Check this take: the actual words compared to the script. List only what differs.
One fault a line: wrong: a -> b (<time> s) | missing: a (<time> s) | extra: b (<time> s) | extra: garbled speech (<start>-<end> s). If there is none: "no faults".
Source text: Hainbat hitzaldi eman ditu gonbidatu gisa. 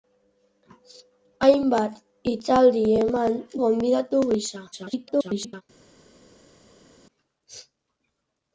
missing: ditu (3.4 s)
extra: garbled speech (4.7-5.6 s)